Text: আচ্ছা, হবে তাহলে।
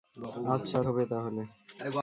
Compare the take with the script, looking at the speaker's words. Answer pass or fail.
pass